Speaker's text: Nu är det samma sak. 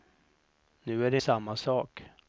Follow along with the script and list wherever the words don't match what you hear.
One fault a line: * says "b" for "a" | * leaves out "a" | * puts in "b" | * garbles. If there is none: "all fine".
all fine